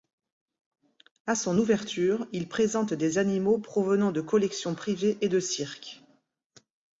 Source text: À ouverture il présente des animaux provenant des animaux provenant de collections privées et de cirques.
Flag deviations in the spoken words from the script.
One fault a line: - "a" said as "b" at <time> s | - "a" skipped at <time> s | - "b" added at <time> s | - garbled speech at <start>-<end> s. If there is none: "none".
- "son" added at 1.3 s
- "des animaux provenant" skipped at 4.1 s